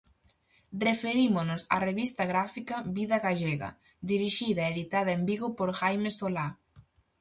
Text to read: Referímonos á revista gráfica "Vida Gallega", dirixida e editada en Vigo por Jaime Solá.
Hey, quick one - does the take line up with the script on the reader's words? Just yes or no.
yes